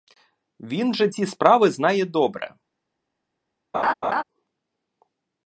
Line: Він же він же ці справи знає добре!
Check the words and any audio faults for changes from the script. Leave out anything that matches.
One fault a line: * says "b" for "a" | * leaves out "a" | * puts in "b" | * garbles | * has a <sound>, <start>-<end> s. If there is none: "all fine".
* leaves out "він же"
* has a laugh, 3.7-4.2 s